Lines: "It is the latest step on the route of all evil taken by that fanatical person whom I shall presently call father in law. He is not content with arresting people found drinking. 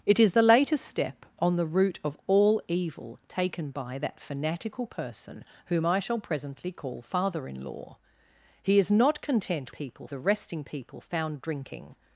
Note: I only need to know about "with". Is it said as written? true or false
false